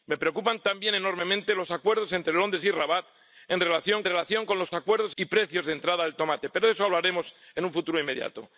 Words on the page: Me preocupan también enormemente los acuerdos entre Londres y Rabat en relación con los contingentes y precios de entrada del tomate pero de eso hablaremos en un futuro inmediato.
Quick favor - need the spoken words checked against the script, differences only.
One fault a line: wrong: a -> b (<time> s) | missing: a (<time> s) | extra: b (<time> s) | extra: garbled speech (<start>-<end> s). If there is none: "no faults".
extra: relación (4.0 s)
wrong: contingentes -> acuerdos (4.7 s)